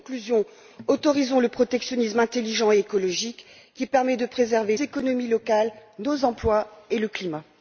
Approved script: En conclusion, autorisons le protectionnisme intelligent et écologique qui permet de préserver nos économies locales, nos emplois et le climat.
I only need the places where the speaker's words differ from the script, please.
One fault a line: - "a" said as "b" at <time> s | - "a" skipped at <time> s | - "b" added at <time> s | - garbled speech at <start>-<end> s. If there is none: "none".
- "nos" skipped at 4.8 s